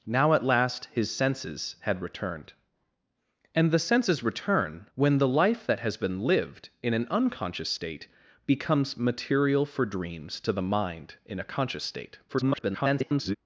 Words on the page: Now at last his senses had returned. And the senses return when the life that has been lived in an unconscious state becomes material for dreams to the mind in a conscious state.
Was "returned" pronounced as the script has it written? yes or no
yes